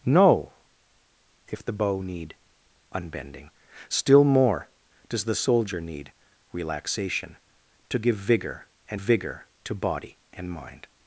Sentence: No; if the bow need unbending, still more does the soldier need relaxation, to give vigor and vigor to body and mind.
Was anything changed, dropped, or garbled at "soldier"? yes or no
no